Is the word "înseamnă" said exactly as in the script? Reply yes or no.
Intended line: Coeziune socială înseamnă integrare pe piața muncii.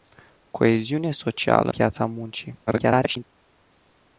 no